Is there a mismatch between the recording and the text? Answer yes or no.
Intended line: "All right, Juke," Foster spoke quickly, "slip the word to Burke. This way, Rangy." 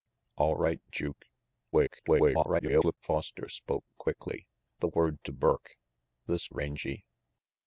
yes